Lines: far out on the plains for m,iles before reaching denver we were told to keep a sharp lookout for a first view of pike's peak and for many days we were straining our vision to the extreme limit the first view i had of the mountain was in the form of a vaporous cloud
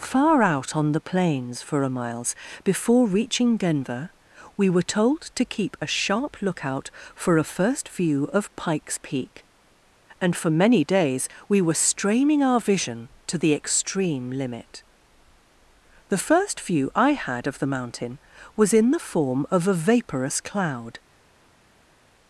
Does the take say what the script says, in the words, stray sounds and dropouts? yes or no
no